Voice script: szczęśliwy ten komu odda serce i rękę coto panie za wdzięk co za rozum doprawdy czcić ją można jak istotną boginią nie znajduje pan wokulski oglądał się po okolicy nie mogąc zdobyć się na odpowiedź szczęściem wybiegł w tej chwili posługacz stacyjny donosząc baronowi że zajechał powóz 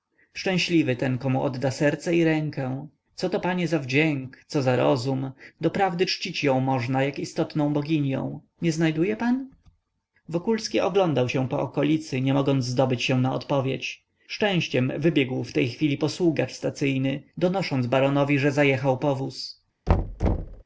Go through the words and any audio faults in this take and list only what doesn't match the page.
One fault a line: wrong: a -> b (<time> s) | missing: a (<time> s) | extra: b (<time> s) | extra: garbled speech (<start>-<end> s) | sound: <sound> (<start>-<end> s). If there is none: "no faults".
sound: thud (19.9-20.6 s)